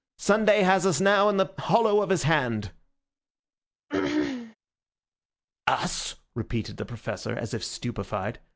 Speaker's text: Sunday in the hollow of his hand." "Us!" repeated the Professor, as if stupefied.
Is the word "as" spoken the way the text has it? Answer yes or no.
yes